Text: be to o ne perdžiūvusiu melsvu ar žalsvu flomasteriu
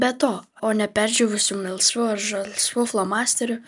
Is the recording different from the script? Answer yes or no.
no